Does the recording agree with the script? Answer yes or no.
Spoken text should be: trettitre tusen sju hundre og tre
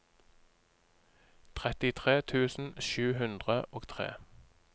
yes